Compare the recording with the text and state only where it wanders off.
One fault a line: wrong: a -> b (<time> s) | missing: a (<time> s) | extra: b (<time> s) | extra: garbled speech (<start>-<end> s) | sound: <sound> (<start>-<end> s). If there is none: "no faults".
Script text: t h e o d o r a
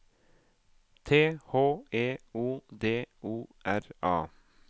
no faults